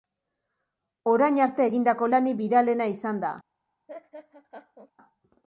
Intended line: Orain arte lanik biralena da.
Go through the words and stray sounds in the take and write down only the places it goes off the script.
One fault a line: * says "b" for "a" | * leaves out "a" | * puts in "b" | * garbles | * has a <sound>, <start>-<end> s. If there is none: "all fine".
* puts in "egindako"
* puts in "izan"
* has a laugh, 3.9-4.9 s